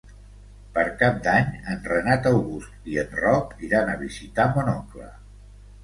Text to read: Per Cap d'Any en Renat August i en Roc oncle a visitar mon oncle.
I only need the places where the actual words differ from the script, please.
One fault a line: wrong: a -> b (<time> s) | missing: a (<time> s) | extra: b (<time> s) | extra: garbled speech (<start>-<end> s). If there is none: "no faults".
wrong: oncle -> iran (3.7 s)